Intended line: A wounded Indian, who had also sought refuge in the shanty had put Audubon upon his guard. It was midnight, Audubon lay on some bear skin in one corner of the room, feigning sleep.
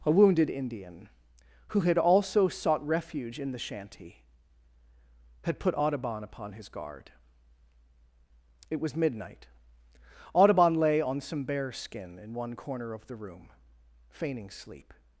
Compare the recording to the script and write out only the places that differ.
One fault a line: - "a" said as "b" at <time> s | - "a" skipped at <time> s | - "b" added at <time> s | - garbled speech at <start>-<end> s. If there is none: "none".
none